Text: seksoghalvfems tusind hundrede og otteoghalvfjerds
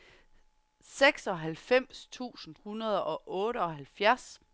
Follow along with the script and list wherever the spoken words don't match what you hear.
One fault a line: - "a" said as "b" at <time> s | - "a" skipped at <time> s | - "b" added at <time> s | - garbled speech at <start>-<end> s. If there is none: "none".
none